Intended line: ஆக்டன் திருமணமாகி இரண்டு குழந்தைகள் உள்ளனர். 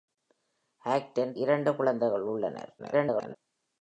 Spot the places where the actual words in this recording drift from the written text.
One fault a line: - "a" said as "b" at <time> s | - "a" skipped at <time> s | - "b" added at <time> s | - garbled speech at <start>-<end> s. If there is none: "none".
- "திருமணமாகி" skipped at 1.4 s
- garbled speech at 2.8-3.4 s